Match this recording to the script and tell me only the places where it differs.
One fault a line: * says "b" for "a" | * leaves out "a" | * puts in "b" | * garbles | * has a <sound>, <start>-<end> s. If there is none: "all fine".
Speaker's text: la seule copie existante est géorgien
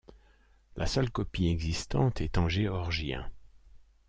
* puts in "en"